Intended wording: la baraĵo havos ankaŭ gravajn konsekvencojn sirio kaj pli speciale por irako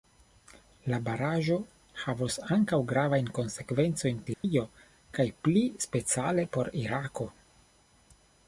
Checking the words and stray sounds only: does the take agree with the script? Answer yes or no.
no